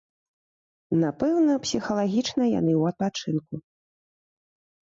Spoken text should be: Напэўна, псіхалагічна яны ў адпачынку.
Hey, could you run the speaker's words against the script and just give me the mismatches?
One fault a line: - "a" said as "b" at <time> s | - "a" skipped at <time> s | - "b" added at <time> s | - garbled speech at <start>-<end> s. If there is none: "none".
none